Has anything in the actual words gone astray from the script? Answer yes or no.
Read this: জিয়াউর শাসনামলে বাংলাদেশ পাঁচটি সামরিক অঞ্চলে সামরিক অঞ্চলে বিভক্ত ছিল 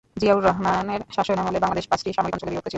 yes